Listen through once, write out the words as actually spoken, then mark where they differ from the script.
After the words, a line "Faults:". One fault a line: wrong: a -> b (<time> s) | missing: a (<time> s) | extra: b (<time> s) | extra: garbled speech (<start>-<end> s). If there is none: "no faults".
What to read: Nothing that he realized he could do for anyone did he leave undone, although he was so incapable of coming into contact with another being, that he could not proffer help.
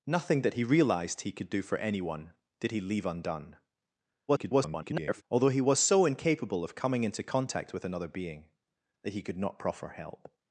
Nothing that he realized he could do for anyone did he leave undone, [garbled] although he was so incapable of coming into contact with another being, that he could not proffer help.
Faults:
extra: garbled speech (4.3-5.2 s)